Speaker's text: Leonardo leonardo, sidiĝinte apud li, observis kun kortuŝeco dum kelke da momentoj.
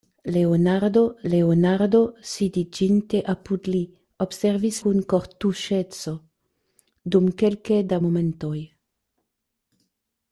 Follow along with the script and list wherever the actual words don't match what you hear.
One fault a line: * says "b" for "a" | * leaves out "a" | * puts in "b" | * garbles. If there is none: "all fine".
all fine